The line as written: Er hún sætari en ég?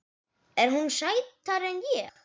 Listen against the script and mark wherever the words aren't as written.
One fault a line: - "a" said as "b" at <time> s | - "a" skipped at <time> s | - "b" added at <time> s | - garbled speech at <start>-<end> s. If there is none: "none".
none